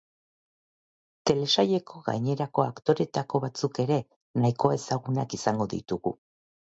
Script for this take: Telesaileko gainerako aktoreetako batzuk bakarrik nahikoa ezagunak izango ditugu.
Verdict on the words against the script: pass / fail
fail